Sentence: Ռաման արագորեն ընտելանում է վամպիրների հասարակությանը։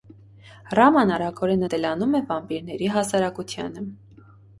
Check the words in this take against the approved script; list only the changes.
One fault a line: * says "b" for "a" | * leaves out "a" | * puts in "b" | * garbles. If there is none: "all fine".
all fine